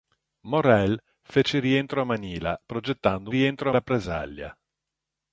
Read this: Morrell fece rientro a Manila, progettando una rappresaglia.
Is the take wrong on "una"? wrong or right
wrong